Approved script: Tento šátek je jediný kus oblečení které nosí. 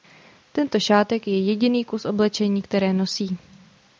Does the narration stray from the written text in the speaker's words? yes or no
no